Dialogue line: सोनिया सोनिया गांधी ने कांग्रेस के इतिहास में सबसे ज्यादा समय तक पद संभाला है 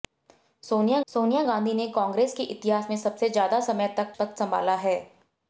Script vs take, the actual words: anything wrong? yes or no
no